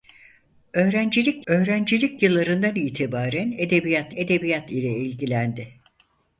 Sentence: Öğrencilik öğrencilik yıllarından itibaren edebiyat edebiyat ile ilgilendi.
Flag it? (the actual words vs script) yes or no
no